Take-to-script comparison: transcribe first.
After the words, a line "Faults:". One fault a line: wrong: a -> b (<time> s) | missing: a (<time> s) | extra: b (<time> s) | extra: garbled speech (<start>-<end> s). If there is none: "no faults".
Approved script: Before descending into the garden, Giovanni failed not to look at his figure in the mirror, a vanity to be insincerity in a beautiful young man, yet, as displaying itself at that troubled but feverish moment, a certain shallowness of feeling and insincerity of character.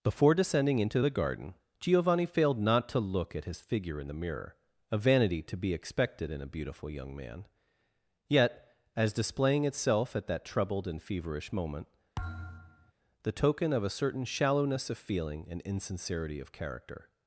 Before descending into the garden, Giovanni failed not to look at his figure in the mirror, a vanity to be expected in a beautiful young man, yet, as displaying itself at that troubled and feverish moment, the token of a certain shallowness of feeling and insincerity of character.
Faults:
wrong: insincerity -> expected (5.7 s)
wrong: but -> and (10.9 s)
extra: the token of (13.2 s)